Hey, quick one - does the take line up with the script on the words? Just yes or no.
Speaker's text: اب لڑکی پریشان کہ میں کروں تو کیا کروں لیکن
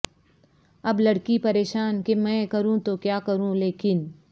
yes